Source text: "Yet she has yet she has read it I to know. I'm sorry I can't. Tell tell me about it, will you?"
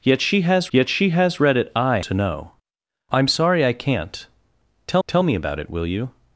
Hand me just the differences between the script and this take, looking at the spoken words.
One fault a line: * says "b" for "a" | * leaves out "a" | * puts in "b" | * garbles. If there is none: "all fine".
all fine